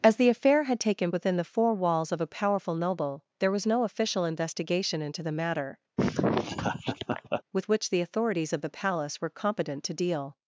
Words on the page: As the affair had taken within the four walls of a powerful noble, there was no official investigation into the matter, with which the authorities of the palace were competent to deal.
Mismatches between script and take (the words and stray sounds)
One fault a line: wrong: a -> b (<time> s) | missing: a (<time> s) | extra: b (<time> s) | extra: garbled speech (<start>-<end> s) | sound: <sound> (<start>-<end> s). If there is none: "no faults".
sound: laugh (6.0-7.4 s)